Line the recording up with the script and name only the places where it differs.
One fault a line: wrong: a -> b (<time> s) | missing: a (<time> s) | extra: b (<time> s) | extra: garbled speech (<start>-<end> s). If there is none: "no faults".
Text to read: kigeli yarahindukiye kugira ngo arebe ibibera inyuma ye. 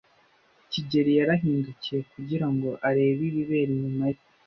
no faults